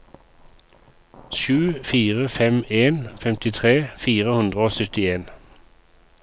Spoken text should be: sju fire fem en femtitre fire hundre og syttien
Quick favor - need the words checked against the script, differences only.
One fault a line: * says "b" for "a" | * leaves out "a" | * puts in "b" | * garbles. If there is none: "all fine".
all fine